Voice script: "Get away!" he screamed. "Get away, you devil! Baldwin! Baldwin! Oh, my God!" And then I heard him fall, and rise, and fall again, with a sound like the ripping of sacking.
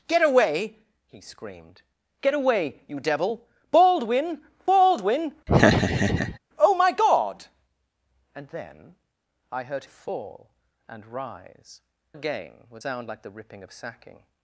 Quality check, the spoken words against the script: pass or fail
fail